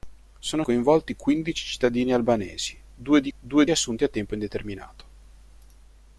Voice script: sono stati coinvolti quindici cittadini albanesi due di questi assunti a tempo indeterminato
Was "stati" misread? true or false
true